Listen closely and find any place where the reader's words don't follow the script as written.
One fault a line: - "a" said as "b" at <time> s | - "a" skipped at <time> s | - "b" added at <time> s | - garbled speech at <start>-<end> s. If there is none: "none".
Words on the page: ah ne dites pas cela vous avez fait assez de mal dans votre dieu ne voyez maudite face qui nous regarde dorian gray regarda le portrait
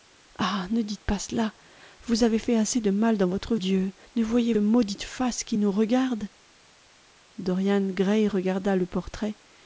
none